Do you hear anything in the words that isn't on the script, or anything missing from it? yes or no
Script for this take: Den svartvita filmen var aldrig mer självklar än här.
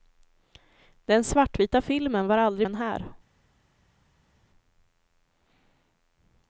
yes